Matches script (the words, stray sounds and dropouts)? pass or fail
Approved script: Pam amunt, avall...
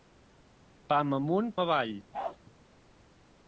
fail